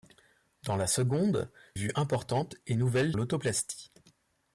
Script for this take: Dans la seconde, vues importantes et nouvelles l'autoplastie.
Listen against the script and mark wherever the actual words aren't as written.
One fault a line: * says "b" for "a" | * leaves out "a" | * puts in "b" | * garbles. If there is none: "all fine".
all fine